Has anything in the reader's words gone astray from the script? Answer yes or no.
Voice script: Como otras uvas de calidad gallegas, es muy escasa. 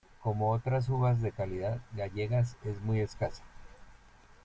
no